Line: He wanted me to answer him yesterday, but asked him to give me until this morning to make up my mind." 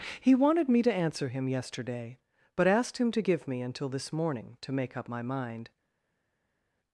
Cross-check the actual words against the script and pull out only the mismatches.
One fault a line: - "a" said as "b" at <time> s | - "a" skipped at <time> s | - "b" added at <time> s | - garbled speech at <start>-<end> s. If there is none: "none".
none